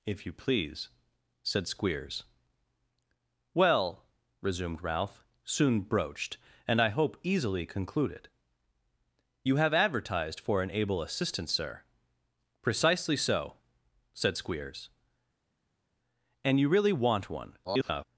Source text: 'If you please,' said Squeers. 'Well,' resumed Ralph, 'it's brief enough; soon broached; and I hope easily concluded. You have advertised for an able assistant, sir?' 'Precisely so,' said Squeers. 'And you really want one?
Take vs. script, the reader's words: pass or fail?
fail